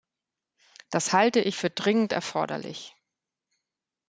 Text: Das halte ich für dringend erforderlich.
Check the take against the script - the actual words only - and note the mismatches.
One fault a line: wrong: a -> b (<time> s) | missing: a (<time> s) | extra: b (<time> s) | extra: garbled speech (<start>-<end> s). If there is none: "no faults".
no faults